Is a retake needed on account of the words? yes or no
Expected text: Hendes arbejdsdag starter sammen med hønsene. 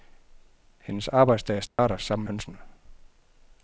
yes